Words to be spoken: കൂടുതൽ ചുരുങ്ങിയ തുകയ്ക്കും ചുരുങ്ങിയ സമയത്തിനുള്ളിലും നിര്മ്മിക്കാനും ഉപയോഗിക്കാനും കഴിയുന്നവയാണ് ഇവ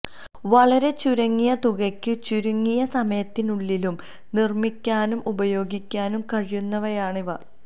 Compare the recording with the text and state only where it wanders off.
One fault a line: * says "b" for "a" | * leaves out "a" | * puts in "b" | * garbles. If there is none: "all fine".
* says "വളരെ" for "കൂടുതൽ"